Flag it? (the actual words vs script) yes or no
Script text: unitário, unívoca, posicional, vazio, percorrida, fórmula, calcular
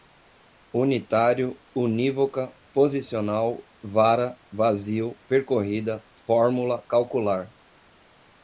yes